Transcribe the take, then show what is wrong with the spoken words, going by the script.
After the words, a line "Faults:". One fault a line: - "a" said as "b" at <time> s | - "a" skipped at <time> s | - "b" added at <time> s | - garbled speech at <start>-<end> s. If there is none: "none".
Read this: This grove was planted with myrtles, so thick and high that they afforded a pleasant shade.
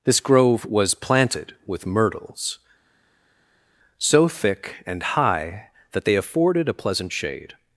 This grove was planted with myrtles, so thick and high that they afforded a pleasant shade.
Faults:
none